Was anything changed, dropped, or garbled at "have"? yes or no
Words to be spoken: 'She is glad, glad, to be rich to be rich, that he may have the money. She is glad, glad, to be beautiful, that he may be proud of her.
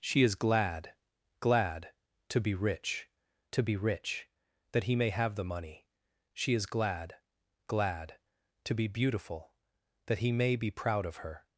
no